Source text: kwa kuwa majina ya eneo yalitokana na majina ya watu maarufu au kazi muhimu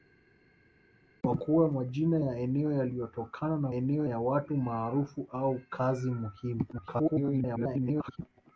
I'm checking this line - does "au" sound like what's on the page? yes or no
yes